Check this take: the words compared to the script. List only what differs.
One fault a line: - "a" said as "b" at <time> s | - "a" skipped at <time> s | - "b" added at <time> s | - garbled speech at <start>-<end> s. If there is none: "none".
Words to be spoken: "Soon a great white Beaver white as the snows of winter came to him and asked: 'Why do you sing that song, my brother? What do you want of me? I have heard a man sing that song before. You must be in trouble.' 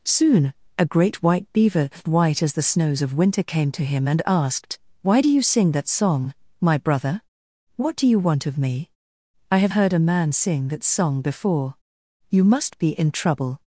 none